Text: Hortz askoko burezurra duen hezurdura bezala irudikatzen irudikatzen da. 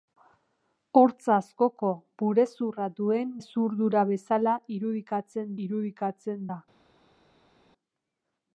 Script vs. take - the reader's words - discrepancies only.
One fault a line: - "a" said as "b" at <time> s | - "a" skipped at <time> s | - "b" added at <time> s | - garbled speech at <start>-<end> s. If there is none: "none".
none